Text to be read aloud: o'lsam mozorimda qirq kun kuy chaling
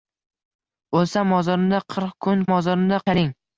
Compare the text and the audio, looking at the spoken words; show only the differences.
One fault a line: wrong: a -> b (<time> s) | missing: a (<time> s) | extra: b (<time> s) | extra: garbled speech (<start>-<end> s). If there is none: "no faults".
wrong: kuy -> mozorimda (2.5 s)